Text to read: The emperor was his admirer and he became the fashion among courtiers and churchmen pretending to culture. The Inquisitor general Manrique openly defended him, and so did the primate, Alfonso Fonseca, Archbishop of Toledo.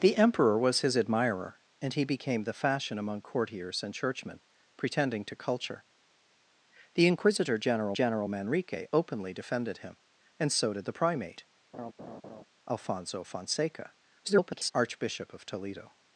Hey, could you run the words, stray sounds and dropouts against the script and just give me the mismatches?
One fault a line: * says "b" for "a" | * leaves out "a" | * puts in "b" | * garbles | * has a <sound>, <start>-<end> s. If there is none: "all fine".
* puts in "general"
* has a laugh, 11.7-12.4 s
* garbles